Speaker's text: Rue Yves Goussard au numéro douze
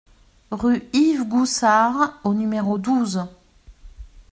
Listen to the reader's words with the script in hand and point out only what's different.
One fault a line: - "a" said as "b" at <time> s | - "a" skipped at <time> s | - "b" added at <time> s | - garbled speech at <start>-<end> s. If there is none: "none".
none